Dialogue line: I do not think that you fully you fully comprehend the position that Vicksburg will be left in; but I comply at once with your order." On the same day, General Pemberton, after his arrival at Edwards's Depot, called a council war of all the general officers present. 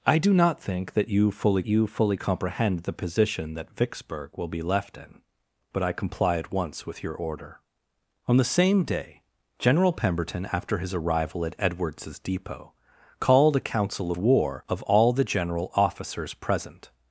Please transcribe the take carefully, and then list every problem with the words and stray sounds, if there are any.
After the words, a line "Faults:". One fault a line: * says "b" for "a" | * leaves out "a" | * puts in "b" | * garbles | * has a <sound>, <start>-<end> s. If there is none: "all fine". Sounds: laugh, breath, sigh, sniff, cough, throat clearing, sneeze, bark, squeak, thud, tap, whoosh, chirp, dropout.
I do not think that you fully you fully comprehend the position that Vicksburg will be left in; but I comply at once with your order." On the same day, General Pemberton, after his arrival at Edwards's Depot, called a council war of all the general officers present.
Faults:
all fine